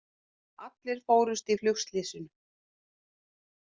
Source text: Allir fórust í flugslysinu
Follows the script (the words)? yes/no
yes